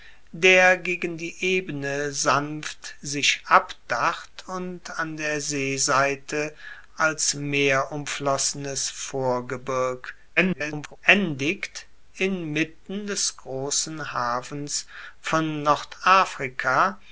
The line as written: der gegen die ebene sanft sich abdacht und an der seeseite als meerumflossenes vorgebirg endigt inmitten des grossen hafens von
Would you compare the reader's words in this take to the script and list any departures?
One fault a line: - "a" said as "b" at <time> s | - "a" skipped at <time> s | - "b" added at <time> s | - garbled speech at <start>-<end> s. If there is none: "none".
- garbled speech at 10.4-11.0 s